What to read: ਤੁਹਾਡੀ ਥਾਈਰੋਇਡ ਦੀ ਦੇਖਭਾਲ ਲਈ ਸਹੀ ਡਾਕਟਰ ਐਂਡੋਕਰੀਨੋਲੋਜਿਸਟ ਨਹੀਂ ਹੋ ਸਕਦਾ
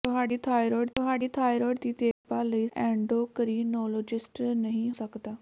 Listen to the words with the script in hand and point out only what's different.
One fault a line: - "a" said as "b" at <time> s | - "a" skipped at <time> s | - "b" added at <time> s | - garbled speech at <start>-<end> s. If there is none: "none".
- "ਤੁਹਾਡੀ ਥਾਈਰੋਇਡ" added at 1.0 s
- "ਸਹੀ ਡਾਕਟਰ" skipped at 2.7 s
- "ਹੋ" skipped at 4.9 s